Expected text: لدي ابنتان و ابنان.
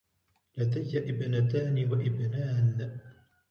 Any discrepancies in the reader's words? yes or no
no